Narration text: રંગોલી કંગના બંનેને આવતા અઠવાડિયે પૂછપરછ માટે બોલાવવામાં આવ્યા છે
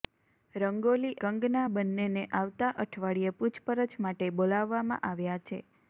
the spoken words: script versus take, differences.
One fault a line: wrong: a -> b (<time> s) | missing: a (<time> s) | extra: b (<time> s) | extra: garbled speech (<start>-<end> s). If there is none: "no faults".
no faults